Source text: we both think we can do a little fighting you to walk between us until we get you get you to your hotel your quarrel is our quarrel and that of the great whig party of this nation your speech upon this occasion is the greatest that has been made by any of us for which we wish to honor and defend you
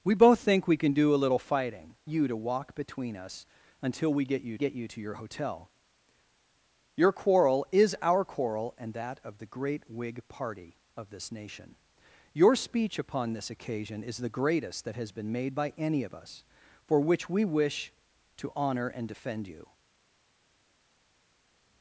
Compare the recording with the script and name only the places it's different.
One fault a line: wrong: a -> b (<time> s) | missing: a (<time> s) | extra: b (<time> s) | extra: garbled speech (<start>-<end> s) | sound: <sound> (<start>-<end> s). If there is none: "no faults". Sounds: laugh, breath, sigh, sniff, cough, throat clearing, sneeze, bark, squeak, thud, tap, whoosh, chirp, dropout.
no faults